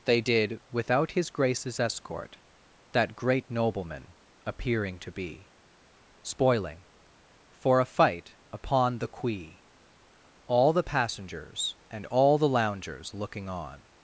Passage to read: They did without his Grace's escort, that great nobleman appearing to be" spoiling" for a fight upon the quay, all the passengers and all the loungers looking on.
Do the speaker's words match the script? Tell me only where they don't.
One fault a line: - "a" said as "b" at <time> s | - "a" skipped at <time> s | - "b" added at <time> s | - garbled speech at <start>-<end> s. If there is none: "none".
none